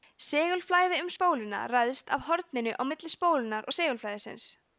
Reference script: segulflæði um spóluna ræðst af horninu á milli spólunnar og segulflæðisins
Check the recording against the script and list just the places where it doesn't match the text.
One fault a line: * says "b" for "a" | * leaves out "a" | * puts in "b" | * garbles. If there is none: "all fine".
all fine